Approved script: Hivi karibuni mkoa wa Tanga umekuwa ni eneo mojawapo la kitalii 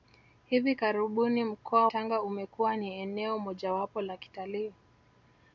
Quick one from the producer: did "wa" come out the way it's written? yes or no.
no